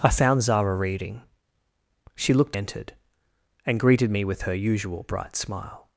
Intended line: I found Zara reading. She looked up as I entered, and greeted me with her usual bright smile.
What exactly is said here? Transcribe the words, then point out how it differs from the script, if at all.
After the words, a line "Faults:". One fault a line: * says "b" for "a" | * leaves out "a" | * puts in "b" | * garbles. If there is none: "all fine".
I found Zara reading. She looked entered, and greeted me with her usual bright smile.
Faults:
* leaves out "up as I"